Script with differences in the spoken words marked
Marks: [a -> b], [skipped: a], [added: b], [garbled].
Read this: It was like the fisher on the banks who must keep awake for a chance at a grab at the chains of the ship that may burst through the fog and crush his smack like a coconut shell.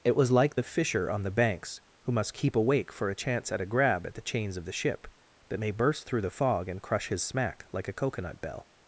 It was like the fisher on the banks who must keep awake for a chance at a grab at the chains of the ship that may burst through the fog and crush his smack like a coconut [shell. -> bell]